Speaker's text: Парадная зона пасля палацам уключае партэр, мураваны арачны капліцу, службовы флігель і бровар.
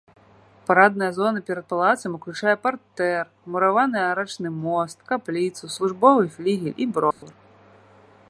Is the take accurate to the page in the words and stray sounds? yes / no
no